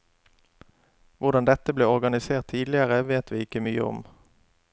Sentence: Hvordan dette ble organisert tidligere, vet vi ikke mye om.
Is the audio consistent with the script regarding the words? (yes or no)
yes